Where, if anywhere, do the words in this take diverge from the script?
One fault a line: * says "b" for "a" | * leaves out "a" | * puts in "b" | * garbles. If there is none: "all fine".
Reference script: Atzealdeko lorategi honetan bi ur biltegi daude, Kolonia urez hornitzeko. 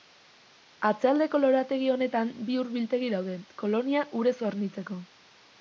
all fine